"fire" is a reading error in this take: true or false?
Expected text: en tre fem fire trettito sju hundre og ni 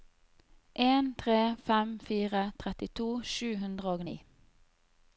false